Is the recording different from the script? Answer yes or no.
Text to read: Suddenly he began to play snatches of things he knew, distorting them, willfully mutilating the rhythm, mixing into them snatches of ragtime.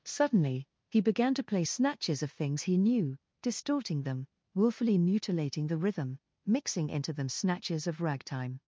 no